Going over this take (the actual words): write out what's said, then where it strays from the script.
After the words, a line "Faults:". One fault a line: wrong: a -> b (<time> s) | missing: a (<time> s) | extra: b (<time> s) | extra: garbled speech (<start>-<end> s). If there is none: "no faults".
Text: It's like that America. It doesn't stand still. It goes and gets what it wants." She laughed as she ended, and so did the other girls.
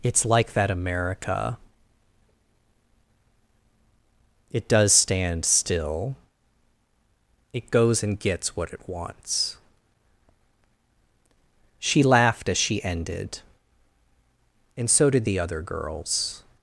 It's like that America. It does stand still. It goes and gets what it wants." She laughed as she ended, and so did the other girls.
Faults:
wrong: doesn't -> does (4.7 s)